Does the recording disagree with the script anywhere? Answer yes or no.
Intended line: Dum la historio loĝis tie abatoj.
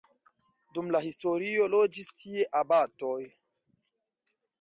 no